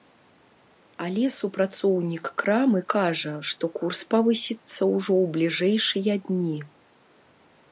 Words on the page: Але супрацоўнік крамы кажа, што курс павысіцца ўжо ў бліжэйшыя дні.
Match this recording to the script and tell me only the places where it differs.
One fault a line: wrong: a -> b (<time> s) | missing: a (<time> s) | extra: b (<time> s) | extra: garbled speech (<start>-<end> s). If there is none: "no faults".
no faults